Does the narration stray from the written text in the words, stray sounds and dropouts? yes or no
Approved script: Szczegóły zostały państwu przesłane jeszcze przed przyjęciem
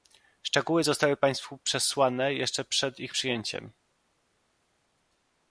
yes